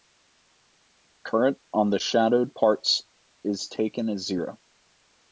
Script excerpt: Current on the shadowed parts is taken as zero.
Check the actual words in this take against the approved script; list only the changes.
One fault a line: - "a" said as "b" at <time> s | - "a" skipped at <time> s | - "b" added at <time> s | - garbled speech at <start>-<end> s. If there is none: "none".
none